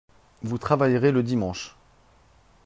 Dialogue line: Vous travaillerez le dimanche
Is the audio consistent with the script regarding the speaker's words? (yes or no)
yes